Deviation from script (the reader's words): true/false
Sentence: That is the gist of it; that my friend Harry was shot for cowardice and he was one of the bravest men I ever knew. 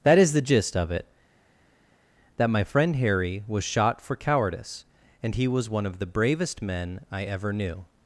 false